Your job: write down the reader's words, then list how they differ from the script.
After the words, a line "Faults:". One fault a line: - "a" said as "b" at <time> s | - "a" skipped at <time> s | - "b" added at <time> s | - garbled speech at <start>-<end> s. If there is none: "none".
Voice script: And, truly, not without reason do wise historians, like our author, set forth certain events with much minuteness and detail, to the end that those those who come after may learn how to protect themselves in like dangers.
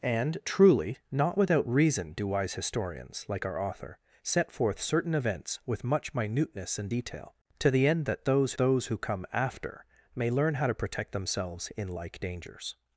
And, truly, not without reason do wise historians, like our author, set forth certain events with much minuteness and detail, to the end that those those who come after may learn how to protect themselves in like dangers.
Faults:
none